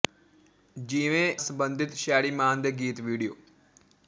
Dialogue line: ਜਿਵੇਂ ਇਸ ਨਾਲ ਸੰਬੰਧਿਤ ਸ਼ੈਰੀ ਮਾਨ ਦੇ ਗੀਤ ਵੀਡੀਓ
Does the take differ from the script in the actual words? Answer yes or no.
yes